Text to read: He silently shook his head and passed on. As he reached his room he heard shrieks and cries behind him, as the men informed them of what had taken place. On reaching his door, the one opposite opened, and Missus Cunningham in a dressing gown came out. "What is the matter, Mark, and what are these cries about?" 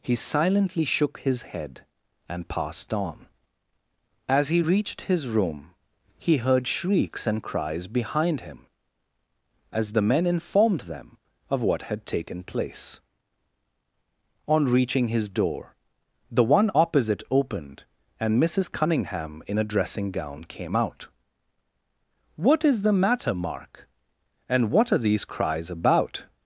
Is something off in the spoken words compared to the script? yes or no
no